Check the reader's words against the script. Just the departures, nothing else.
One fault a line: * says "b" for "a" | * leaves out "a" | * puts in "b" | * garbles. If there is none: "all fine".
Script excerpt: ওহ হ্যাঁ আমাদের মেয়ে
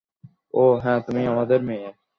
* puts in "তুমি"